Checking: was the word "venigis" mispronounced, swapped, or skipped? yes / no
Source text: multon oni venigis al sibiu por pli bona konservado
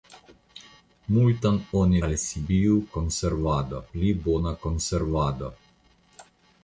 yes